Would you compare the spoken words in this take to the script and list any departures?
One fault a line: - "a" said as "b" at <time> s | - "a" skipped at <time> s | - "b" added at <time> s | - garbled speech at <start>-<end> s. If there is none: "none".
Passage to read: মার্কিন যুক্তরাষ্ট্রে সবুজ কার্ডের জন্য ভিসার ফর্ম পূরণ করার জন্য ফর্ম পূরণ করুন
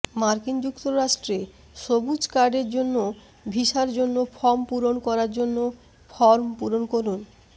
- "জন্য" added at 3.9 s